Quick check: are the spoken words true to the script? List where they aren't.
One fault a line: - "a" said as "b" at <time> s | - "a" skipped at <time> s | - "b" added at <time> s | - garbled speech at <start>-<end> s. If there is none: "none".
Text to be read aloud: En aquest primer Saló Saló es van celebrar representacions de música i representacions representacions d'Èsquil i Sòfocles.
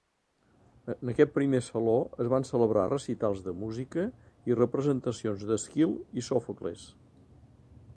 - "Saló" skipped at 2.0 s
- "representacions" said as "recitals" at 2.9 s
- "representacions" skipped at 5.5 s